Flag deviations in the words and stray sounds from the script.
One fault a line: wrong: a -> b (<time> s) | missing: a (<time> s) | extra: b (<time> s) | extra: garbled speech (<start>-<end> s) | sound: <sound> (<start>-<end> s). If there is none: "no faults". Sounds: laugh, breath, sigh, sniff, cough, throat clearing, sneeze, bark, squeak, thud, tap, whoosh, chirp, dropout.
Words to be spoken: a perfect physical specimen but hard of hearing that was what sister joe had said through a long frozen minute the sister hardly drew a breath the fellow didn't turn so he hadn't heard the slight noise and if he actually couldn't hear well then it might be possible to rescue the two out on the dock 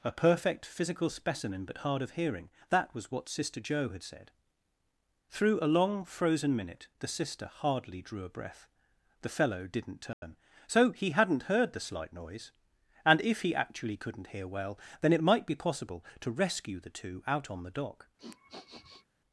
sound: dropout (10.1-10.2 s)
sound: sniff (18.2-19.0 s)